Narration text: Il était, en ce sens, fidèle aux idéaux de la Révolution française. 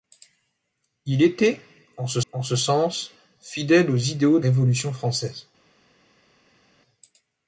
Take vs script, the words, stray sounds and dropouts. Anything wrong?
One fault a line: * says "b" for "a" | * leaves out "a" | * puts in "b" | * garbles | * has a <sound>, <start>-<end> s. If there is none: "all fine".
* puts in "en ce"
* leaves out "de la"